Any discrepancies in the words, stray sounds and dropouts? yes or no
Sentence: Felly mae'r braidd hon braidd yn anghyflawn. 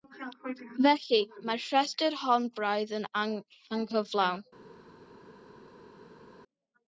yes